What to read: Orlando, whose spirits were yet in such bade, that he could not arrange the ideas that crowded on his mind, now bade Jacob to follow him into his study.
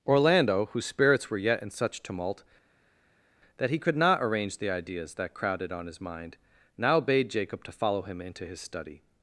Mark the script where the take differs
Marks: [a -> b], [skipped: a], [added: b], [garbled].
Orlando, whose spirits were yet in such [bade, -> tumult] that he could not arrange the ideas that crowded on his mind, now bade Jacob to follow him into his study.